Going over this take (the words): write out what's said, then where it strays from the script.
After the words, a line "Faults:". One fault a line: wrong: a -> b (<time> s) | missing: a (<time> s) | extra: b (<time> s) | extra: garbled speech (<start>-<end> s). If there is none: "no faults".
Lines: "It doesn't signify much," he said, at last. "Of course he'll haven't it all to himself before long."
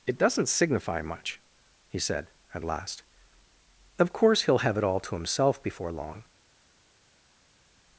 "It doesn't signify much," he said, at last. "Of course he'll have it all to himself before long."
Faults:
wrong: haven't -> have (4.6 s)